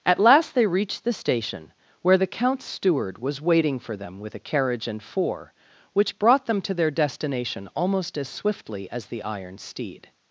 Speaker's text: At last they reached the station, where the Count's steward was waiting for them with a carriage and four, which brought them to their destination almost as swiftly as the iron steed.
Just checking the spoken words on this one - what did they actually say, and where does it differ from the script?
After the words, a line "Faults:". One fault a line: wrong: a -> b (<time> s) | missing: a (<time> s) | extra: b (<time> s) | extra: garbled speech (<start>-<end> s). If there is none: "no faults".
At last they reached the station, where the Count's steward was waiting for them with a carriage and four, which brought them to their destination almost as swiftly as the iron steed.
Faults:
no faults